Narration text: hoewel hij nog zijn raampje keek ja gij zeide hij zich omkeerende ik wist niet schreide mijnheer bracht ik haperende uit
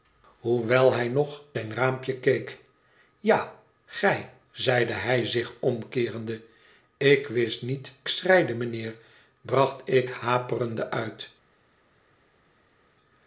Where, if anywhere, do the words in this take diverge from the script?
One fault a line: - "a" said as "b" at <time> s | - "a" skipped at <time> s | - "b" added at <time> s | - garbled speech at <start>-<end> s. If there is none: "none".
none